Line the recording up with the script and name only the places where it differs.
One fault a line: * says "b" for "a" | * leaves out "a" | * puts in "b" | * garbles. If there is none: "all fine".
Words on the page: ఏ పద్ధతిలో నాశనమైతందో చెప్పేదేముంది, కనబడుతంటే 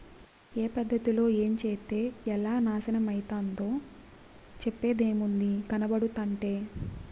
* puts in "ఏంచేత్తే ఎలా"